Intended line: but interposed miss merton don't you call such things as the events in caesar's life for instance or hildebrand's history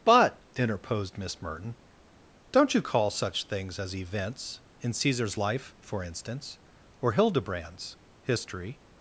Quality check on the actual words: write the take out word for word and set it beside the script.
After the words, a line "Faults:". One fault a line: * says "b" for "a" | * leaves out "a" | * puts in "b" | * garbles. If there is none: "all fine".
but interposed miss merton don't you call such things as events in caesar's life for instance or hildebrand's history
Faults:
* leaves out "the"